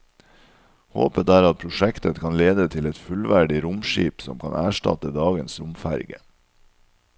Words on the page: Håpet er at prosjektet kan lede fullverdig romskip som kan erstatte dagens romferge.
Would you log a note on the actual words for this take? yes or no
yes